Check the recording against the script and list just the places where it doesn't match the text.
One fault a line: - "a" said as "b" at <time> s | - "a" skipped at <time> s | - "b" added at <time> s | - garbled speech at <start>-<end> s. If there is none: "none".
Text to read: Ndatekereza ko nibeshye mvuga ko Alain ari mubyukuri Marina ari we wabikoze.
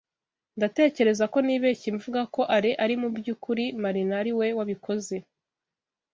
none